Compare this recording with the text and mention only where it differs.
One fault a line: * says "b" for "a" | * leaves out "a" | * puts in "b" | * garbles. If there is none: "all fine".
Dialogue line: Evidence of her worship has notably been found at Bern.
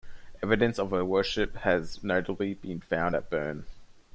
all fine